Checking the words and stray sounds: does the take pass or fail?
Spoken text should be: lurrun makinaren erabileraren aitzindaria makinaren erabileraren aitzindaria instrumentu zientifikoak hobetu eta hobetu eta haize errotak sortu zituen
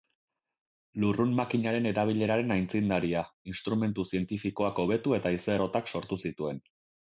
fail